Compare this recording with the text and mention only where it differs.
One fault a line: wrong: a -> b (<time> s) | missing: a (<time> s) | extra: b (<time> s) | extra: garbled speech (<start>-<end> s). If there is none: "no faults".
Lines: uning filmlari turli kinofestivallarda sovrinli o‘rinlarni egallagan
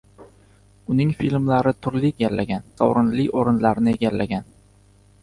wrong: kinofestivallarda -> egallagan (2.2 s)